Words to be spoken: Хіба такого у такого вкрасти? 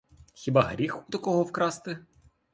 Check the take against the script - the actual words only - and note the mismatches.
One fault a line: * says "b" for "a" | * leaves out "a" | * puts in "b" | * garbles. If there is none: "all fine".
* says "гріх" for "такого"